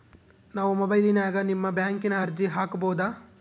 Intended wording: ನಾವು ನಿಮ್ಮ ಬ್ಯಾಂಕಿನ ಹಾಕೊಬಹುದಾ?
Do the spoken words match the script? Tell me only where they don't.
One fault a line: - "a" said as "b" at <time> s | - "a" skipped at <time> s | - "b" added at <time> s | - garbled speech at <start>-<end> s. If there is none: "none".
- "ಮೊಬೈಲಿನ್ಯಾಗ" added at 0.7 s
- "ಅರ್ಜಿ" added at 2.2 s